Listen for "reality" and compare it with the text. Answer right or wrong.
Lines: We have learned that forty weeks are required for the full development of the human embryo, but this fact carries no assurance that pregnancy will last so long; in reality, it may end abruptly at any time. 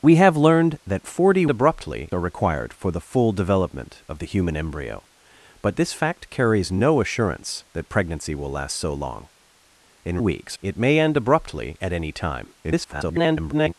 wrong